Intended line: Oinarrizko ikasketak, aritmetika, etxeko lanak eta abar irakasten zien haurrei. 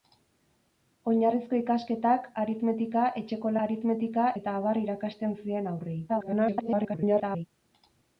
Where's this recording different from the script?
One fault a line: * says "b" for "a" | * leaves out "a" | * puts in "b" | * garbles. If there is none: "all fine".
* says "aritmetika" for "lanak"
* garbles